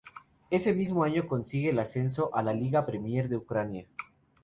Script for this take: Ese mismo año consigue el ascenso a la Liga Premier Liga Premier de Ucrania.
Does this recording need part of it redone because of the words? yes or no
yes